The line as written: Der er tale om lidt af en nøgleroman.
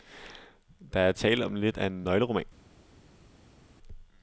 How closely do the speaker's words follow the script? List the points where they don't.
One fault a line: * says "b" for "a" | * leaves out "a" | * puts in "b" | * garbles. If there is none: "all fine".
all fine